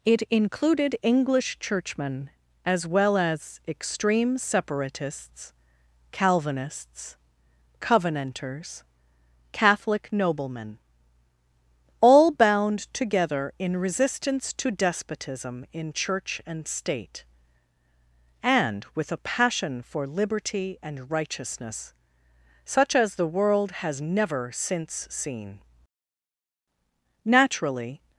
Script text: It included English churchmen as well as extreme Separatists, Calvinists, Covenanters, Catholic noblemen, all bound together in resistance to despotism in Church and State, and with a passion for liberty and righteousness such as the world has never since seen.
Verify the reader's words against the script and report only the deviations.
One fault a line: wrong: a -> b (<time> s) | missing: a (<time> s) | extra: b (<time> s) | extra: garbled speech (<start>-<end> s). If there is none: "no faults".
extra: Naturally (27.3 s)